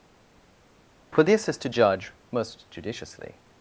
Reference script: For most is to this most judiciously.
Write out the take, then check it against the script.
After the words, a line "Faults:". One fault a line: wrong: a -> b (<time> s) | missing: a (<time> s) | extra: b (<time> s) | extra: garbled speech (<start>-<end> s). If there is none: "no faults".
For this is to judge most judiciously.
Faults:
wrong: most -> this (1.2 s)
wrong: this -> judge (1.7 s)